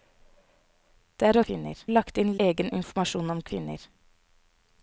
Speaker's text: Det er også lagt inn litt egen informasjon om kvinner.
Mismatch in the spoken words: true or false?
true